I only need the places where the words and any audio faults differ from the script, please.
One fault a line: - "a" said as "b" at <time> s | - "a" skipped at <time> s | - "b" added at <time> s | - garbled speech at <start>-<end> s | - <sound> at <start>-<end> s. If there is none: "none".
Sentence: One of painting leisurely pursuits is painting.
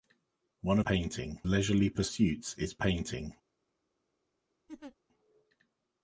- laugh at 4.7-4.9 s